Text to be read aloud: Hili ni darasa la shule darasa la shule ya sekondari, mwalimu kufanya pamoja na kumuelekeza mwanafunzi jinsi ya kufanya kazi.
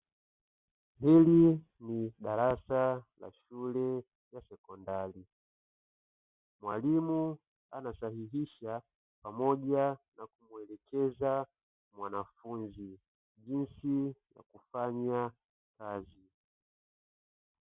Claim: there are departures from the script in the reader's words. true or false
true